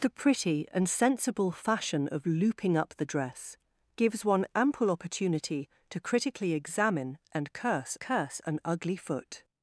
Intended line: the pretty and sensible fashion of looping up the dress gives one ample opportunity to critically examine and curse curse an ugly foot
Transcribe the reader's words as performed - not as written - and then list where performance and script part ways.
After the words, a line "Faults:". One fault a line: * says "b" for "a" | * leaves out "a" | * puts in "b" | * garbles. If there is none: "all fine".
the pretty and sensible fashion of looping up the dress gives one ample opportunity to critically examine and curse curse an ugly foot
Faults:
all fine